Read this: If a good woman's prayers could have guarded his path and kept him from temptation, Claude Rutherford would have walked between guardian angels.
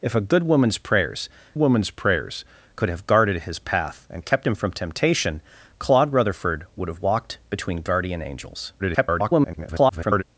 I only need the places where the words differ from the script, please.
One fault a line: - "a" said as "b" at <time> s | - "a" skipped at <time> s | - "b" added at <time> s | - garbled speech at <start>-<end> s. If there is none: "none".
- "woman's prayers" added at 1.5 s
- garbled speech at 8.8-10.2 s